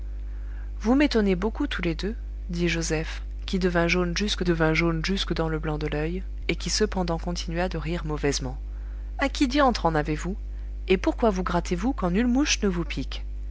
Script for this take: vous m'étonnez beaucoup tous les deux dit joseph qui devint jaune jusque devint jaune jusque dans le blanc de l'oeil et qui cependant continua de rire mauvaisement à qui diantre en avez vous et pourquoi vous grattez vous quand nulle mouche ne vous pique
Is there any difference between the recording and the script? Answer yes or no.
no